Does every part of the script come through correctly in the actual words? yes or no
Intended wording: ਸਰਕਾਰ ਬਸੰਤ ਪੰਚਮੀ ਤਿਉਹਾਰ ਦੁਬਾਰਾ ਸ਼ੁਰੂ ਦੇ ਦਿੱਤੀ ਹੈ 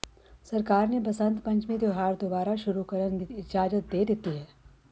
no